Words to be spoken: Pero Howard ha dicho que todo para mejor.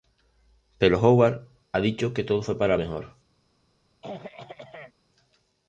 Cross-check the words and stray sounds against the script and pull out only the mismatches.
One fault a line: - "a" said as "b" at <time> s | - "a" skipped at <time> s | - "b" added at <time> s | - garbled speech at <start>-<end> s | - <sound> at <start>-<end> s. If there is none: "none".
- "fue" added at 2.4 s
- throat clearing at 4.0-4.9 s